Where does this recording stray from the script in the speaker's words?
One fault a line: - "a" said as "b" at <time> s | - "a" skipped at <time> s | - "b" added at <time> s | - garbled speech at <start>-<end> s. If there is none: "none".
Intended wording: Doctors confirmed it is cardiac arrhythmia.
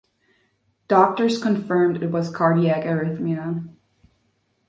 - "is" said as "was" at 2.1 s